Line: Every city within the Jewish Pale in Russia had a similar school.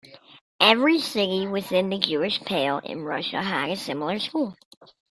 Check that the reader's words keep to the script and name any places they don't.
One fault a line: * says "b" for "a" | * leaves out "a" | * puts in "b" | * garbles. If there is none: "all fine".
all fine